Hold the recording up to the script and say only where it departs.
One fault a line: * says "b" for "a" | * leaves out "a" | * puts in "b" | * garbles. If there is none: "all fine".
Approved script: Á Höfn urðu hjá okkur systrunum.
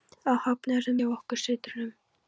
all fine